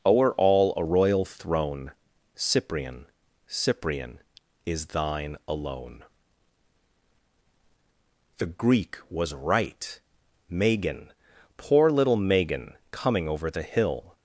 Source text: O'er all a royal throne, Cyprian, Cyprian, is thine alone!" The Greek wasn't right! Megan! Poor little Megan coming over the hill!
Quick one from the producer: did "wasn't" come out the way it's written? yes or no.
no